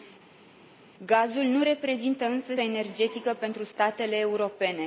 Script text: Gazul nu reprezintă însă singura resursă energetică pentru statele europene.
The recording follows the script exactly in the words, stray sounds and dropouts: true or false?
false